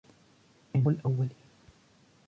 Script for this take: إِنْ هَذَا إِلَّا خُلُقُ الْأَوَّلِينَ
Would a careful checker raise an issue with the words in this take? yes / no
yes